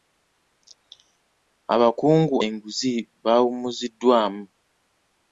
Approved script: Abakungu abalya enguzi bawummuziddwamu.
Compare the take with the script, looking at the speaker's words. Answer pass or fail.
fail